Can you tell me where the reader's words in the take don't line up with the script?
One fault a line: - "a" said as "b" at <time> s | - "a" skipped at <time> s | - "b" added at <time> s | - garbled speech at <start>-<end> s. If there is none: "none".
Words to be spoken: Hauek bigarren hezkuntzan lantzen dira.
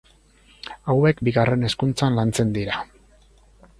none